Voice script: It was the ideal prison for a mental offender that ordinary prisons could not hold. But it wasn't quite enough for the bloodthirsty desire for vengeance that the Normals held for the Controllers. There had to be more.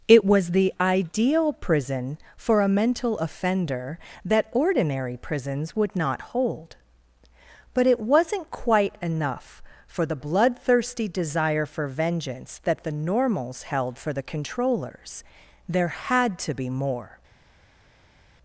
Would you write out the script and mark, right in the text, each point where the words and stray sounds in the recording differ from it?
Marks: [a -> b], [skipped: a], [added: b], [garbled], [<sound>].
It was the ideal prison for a mental offender that ordinary prisons [could -> would] not hold. But it wasn't quite enough for the bloodthirsty desire for vengeance that the Normals held for the Controllers. There had to be more.